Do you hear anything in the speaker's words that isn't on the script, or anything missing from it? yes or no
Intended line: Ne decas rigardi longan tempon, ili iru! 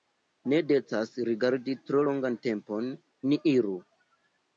yes